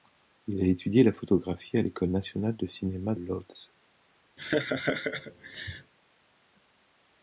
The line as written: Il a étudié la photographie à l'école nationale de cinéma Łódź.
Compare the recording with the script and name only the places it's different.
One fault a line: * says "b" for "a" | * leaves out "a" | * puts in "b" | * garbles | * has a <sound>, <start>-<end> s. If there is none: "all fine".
* has a laugh, 4.4-5.9 s